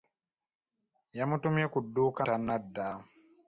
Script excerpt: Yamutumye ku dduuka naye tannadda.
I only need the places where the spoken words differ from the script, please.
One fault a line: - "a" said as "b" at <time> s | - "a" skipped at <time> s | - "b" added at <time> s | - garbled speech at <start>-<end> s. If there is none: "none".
- "naye" skipped at 2.2 s